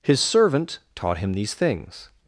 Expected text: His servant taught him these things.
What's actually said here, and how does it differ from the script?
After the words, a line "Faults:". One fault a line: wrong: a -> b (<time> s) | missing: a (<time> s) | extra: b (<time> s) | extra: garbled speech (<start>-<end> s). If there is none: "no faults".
His servant taught him these things.
Faults:
no faults